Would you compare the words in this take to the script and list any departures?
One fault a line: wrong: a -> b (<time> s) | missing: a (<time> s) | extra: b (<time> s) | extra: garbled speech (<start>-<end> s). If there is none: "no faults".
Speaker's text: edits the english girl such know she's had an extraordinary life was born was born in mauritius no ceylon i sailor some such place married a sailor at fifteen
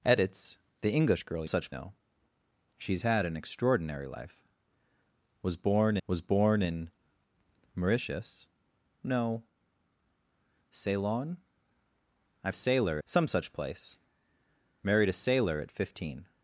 no faults